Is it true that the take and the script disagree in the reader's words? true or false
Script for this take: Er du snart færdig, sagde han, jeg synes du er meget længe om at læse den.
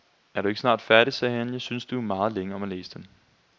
true